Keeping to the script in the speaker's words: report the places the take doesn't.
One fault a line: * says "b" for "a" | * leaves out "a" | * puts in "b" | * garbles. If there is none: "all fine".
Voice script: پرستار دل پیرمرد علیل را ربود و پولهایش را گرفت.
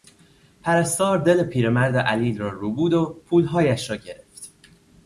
all fine